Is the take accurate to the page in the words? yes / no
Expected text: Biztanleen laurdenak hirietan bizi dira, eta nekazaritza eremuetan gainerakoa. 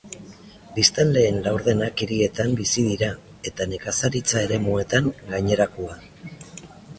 yes